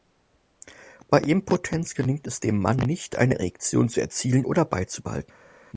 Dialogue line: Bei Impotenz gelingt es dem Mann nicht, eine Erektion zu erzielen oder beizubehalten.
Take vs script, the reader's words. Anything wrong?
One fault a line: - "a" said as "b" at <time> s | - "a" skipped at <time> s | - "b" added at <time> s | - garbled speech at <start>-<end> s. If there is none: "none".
none